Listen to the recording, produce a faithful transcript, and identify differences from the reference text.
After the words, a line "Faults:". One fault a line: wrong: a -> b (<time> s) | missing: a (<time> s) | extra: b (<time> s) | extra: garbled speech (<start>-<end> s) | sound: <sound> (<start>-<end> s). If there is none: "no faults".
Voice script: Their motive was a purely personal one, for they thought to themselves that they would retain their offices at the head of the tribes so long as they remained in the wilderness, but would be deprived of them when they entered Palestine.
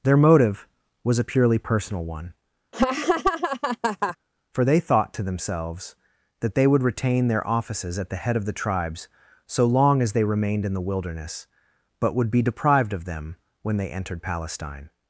Their motive was a purely personal one, for they thought to themselves that they would retain their offices at the head of the tribes so long as they remained in the wilderness, but would be deprived of them when they entered Palestine.
Faults:
sound: laugh (2.7-4.2 s)